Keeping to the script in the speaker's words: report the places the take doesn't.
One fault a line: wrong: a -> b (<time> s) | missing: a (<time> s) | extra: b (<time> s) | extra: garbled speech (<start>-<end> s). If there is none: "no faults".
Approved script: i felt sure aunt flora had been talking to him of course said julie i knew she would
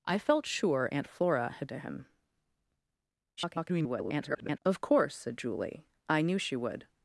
missing: been talking (1.7 s)
extra: garbled speech (3.4-4.6 s)